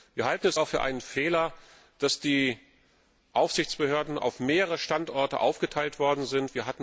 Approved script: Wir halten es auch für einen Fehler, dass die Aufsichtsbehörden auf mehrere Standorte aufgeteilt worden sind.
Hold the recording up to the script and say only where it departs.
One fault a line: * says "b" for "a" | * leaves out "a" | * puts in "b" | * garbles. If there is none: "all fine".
all fine